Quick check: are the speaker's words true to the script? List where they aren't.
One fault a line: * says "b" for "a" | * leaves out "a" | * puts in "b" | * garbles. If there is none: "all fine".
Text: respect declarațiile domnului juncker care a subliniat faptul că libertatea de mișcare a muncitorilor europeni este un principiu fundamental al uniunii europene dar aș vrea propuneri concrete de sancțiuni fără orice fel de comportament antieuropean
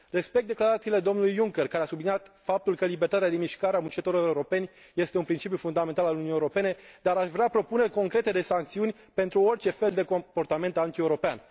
* says "pentru" for "fără"